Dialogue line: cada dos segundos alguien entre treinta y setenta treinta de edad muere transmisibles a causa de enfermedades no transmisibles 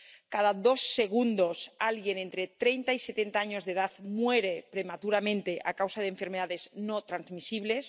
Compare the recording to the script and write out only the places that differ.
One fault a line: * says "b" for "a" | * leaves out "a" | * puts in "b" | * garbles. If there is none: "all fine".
* says "años" for "treinta"
* says "prematuramente" for "transmisibles"